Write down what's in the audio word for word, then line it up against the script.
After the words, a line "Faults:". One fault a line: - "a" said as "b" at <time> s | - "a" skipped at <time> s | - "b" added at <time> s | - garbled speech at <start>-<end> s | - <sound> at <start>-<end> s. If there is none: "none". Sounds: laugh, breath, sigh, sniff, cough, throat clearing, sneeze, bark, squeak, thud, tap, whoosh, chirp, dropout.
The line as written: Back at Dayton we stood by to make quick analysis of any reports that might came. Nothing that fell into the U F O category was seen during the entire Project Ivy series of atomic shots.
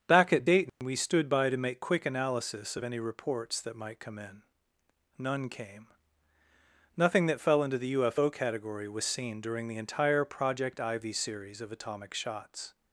Back at Dayton we stood by to make quick analysis of any reports that might come in none came. Nothing that fell into the U F O category was seen during the entire Project Ivy series of atomic shots.
Faults:
- dropout at 0.7-0.8 s
- "come in none" added at 4.0 s